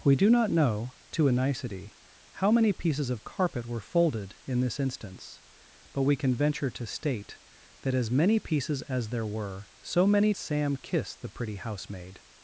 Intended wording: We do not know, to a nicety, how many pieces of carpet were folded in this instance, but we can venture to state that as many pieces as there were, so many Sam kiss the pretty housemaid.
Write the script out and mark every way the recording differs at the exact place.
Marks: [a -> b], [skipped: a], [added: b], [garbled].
We do not know, to a nicety, how many pieces of carpet were folded in this instance, but we can venture to state that as many pieces as there were, so many Sam kiss the pretty housemaid.